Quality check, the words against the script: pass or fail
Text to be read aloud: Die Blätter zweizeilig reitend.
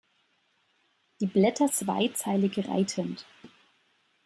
pass